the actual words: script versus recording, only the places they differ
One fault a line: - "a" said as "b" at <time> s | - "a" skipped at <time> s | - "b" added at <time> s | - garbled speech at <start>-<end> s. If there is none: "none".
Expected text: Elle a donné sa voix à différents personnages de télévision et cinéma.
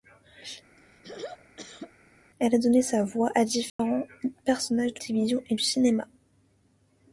none